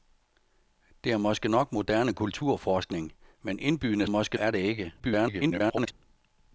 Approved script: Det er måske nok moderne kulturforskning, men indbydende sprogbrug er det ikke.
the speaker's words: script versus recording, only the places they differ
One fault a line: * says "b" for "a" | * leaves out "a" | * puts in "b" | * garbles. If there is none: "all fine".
* says "måske" for "sprogbrug"
* garbles